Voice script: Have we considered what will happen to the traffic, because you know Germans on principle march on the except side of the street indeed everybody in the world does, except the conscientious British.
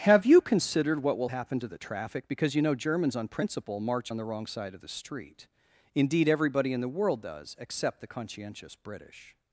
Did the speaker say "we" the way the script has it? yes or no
no